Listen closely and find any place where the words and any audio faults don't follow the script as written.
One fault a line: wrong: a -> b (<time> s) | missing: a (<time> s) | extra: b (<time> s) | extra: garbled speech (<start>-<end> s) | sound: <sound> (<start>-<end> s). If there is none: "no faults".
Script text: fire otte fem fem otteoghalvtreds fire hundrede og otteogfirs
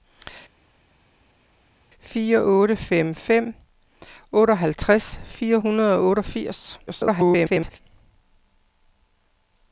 extra: garbled speech (6.9-7.8 s)